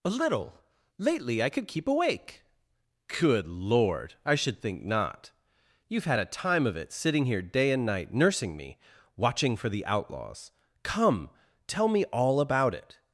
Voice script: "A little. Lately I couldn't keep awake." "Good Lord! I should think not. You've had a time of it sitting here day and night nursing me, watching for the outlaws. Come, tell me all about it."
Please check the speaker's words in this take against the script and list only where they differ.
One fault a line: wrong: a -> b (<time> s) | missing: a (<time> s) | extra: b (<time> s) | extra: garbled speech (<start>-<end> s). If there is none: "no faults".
wrong: couldn't -> could (1.5 s)